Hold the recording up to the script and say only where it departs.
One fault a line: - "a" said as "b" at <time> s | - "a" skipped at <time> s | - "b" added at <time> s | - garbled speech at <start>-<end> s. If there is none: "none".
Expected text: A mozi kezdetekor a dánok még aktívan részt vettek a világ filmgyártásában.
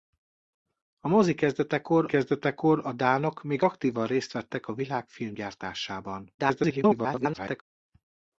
- "kezdetekor" added at 2.1 s
- garbled speech at 6.4-7.6 s